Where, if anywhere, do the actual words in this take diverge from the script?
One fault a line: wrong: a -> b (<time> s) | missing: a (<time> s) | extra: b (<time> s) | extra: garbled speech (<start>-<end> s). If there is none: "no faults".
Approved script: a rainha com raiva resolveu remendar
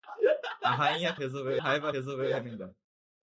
wrong: com -> resolveu (1.2 s)